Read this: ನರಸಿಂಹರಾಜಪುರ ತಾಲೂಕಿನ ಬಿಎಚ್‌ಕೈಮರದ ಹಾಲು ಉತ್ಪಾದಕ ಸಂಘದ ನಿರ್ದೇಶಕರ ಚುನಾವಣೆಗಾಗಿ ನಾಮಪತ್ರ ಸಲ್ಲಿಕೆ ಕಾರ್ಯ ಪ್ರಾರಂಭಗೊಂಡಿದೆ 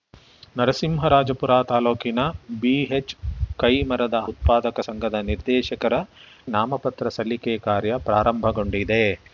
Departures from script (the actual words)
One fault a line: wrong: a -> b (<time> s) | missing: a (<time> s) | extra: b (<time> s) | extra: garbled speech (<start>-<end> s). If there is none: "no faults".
missing: ಹಾಲು (4.2 s)
missing: ಚುನಾವಣೆಗಾಗಿ (5.9 s)